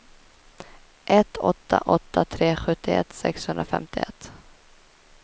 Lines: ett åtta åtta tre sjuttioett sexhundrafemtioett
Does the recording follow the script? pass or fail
pass